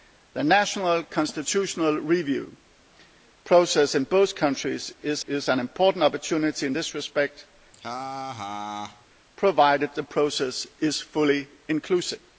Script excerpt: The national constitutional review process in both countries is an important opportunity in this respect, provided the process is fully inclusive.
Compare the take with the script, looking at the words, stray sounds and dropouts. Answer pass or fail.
fail